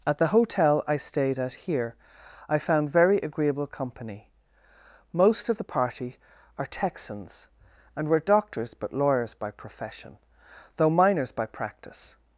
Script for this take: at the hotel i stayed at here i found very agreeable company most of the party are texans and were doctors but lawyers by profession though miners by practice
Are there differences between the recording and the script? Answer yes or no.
no